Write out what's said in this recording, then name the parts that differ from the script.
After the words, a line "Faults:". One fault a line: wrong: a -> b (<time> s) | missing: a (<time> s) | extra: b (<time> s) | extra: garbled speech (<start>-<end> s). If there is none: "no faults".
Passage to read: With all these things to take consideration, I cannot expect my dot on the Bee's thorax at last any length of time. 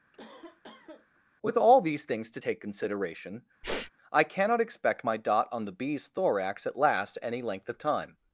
With all these things to take consideration, I cannot expect my dot on the Bee's thorax at last any length of time.
Faults:
no faults